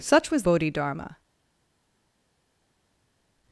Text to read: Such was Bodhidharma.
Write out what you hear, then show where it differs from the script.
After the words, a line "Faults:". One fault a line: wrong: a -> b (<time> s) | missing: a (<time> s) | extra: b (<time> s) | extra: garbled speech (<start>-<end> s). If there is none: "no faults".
Such was Bodhidharma.
Faults:
no faults